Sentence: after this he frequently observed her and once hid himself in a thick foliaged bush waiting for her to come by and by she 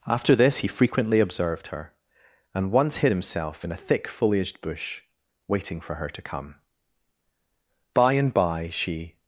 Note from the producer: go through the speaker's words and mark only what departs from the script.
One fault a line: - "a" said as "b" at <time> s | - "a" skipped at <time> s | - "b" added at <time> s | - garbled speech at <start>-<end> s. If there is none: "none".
none